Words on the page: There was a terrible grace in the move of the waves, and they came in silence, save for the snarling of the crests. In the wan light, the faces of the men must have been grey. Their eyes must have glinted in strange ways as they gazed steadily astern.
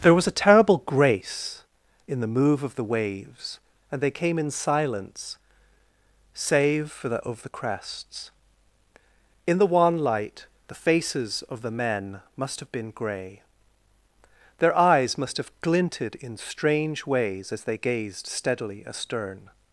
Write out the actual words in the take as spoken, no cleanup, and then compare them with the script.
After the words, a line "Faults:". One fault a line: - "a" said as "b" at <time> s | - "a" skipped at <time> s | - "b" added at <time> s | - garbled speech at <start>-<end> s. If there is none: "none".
There was a terrible grace in the move of the waves, and they came in silence, save for the of the crests. In the wan light, the faces of the men must have been grey. Their eyes must have glinted in strange ways as they gazed steadily astern.
Faults:
- "snarling" skipped at 7.2 s